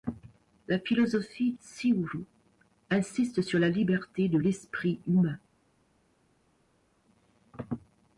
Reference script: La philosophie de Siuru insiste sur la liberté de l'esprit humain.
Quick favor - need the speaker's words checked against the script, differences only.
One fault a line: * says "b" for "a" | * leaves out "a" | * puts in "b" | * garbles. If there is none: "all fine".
* leaves out "de"